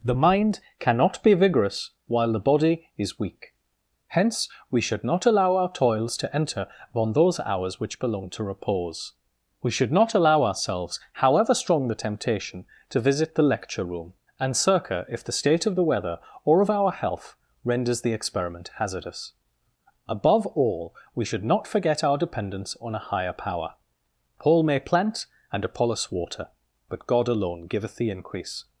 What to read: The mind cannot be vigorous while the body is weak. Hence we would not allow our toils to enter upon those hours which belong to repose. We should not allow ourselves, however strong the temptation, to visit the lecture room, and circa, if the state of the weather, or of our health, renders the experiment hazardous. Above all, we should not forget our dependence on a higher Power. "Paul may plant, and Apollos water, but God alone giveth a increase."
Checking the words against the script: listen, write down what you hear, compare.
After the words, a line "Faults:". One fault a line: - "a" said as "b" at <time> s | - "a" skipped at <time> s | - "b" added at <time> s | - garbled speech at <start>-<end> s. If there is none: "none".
The mind cannot be vigorous while the body is weak. Hence we should not allow our toils to enter upon those hours which belong to repose. We should not allow ourselves, however strong the temptation, to visit the lecture room, and circa, if the state of the weather, or of our health, renders the experiment hazardous. Above all, we should not forget our dependence on a higher Power. "Paul may plant, and Apollos water, but God alone giveth the increase."
Faults:
- "would" said as "should" at 4.8 s
- "a" said as "the" at 28.0 s